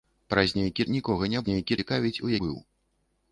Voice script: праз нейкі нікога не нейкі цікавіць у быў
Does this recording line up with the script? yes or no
yes